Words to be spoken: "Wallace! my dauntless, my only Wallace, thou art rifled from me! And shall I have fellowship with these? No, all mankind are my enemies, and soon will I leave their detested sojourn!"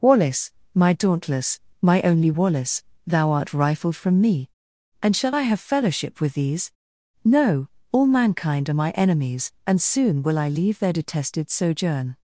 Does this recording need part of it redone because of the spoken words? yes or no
no